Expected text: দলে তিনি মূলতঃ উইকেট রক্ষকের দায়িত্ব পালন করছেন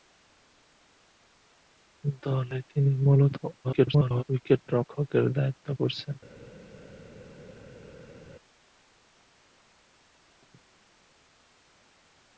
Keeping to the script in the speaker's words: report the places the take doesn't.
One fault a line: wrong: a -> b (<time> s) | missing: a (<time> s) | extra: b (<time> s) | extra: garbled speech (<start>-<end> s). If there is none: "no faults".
extra: garbled speech (3.6-4.2 s)
missing: পালন (5.7 s)